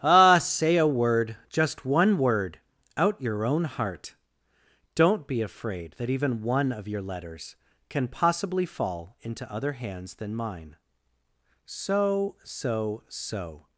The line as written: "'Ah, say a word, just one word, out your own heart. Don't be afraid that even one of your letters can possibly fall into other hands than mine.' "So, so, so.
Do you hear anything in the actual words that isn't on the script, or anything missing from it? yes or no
no